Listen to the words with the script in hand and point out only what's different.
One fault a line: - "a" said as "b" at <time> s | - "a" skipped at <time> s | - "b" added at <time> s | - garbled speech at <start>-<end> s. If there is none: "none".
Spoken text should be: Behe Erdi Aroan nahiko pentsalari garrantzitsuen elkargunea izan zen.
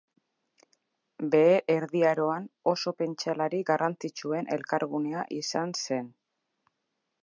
- "nahiko" said as "oso" at 2.7 s